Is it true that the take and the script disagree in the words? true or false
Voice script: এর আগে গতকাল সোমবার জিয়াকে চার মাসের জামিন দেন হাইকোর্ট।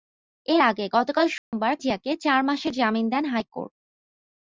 false